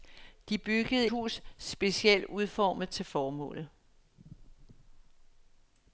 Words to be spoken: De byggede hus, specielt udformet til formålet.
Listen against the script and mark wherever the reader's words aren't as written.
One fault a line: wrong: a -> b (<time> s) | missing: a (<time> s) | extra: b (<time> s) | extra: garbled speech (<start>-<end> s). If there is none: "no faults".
no faults